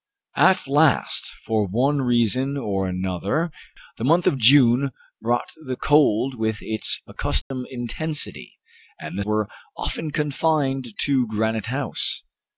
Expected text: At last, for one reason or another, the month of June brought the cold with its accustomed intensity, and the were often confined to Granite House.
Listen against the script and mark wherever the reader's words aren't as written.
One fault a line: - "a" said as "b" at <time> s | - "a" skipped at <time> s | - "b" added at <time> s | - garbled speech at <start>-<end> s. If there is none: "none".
none